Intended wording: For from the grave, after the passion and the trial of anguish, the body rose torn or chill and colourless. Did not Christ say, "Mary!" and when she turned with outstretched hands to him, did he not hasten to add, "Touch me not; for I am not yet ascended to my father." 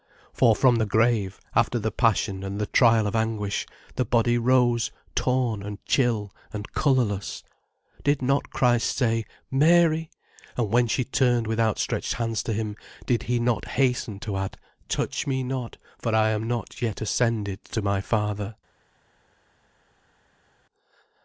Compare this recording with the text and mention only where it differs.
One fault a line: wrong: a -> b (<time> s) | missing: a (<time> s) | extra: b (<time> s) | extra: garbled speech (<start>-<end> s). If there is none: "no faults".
wrong: or -> and (5.6 s)